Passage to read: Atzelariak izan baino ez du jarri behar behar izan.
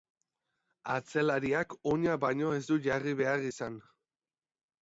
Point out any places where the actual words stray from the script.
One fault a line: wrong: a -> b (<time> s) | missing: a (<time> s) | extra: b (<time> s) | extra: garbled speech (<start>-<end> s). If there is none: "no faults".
wrong: izan -> oina (1.9 s)
missing: behar (3.4 s)